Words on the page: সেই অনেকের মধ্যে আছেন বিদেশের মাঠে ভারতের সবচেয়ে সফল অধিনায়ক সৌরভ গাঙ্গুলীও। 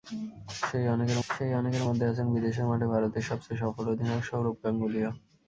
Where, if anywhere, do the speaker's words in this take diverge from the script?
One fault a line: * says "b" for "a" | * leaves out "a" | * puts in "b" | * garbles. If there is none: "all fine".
* puts in "সেই অনেকের"